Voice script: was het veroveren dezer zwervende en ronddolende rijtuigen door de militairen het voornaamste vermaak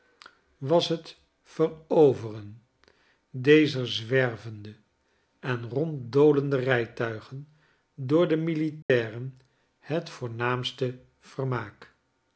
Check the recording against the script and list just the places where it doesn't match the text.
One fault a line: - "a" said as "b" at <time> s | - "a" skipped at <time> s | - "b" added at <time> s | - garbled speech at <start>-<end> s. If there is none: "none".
none